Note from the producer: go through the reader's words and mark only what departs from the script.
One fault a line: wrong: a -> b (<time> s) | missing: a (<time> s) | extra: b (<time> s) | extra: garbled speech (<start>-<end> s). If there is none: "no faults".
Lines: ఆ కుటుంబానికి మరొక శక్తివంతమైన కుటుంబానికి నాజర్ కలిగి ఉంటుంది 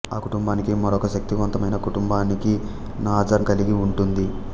no faults